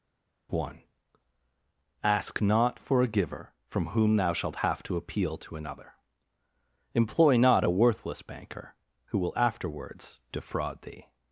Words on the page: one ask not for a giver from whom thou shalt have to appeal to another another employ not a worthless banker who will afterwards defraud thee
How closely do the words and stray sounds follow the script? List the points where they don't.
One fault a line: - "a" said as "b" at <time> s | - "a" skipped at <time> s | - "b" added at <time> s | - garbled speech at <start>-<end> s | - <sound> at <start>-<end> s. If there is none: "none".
- "another" skipped at 5.9 s